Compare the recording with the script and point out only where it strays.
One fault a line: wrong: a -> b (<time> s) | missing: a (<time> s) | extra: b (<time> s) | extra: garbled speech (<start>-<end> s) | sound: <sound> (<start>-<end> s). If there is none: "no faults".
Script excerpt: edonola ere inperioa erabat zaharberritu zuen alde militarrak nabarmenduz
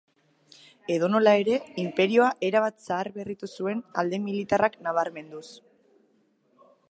no faults